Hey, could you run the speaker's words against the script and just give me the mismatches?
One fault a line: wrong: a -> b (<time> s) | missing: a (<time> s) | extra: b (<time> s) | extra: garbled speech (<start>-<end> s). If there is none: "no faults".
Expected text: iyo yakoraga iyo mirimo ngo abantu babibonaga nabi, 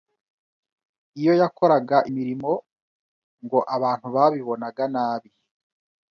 missing: iyo (2.0 s)